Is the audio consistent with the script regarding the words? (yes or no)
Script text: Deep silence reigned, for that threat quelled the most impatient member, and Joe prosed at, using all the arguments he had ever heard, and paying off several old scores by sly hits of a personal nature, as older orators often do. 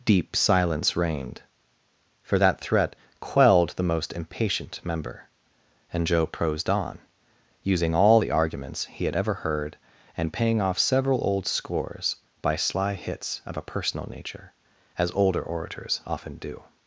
no